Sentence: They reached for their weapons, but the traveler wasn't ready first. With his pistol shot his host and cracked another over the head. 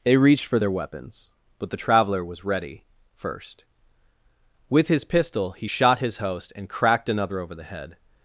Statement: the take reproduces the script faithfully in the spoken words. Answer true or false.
false